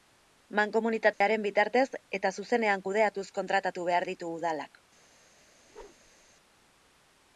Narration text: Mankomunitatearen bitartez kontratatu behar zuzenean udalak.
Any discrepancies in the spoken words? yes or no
yes